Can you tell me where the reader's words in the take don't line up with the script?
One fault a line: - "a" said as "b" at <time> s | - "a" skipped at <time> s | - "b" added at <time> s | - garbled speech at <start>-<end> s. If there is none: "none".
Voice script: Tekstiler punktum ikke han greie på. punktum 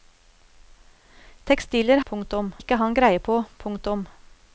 none